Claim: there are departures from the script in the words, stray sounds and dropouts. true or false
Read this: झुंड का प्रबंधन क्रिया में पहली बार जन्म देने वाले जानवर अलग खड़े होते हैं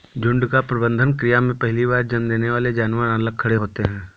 false